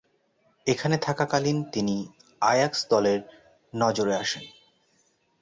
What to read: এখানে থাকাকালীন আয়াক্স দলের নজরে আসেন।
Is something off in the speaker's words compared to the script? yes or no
yes